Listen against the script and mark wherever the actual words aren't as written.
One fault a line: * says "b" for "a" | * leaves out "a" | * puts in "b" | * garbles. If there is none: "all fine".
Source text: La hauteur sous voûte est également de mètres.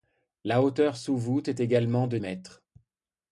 all fine